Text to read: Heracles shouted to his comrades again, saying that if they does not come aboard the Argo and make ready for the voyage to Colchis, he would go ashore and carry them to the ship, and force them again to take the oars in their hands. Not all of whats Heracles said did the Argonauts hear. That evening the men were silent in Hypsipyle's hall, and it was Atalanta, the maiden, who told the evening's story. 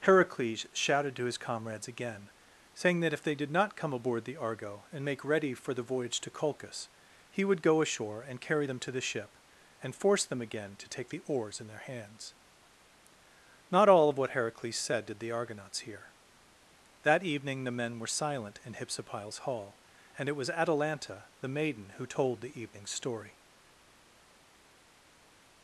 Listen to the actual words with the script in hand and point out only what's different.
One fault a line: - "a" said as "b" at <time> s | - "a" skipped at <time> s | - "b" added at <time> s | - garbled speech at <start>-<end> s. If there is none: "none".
- "does" said as "did" at 3.4 s
- "whats" said as "what" at 14.2 s